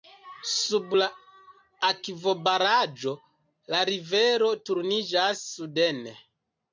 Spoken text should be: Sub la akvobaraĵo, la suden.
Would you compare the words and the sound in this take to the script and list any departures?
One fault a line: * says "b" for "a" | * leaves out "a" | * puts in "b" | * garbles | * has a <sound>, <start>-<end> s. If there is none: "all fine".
* puts in "rivero turniĝas"